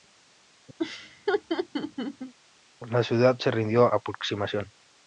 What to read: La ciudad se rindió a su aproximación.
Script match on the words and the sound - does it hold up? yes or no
no